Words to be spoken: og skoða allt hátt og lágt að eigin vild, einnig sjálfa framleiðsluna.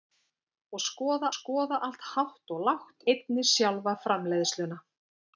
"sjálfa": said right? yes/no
yes